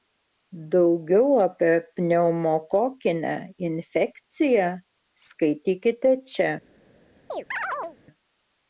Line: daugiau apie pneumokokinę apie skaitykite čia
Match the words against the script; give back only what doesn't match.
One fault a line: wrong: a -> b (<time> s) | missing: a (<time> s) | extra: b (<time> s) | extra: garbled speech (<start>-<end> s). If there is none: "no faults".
wrong: apie -> infekciją (3.7 s)